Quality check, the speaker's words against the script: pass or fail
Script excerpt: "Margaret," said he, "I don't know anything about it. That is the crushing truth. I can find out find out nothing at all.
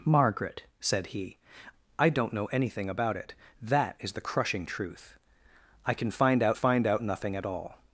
pass